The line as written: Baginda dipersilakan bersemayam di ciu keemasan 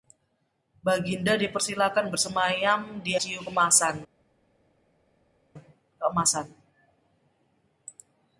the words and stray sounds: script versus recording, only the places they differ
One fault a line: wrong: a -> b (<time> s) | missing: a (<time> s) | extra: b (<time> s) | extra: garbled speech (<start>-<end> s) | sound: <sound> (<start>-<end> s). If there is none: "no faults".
no faults